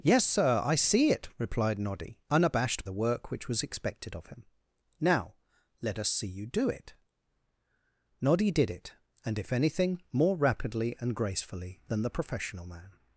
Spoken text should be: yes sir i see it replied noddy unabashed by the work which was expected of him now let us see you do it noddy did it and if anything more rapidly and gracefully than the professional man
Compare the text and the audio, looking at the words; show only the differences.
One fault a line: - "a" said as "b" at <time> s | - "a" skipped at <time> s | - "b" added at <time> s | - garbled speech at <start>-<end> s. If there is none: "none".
- "by" skipped at 2.8 s